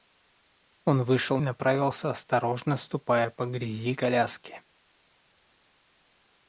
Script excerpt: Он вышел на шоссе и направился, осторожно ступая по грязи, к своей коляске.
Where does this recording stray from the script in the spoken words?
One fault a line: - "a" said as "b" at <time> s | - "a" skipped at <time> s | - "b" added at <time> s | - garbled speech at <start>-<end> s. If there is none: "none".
- "на шоссе и" skipped at 1.4 s
- "к своей" skipped at 3.9 s